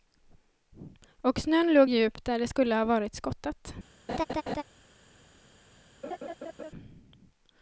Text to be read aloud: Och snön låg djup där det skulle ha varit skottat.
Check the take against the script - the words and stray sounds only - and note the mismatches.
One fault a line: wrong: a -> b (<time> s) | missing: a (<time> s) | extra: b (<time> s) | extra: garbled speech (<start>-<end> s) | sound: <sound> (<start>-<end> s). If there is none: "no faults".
sound: laugh (4.1-4.6 s)
sound: laugh (6.0-6.7 s)